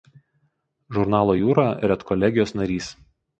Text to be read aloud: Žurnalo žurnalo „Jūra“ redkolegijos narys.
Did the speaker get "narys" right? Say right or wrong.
right